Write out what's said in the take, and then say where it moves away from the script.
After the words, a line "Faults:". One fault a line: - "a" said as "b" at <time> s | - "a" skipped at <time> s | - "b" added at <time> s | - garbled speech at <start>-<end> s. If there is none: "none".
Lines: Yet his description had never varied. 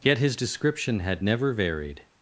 Yet his description had never varied.
Faults:
none